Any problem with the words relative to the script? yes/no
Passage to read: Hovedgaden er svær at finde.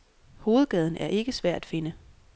yes